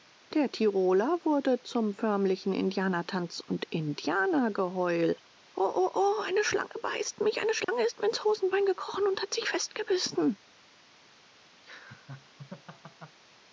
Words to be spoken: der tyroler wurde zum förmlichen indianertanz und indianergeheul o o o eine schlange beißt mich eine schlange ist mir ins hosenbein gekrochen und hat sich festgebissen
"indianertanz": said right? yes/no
yes